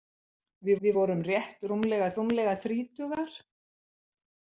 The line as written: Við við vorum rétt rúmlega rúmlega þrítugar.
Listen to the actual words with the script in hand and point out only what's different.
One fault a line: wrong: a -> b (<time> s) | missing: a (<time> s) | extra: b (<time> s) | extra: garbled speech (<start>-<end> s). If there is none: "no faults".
no faults